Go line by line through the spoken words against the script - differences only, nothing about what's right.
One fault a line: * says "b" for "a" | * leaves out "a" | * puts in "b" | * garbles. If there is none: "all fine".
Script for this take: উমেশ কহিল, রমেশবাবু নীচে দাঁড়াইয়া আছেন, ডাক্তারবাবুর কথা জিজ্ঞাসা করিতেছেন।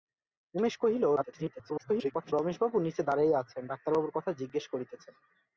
* garbles